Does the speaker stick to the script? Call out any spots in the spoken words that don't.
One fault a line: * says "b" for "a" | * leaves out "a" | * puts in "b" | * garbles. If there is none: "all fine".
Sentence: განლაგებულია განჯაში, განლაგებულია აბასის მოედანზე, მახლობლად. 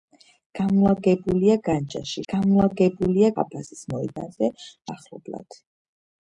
all fine